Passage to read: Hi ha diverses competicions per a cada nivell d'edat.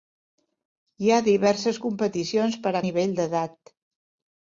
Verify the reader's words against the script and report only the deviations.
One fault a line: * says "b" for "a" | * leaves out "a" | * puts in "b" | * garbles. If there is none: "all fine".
* leaves out "cada"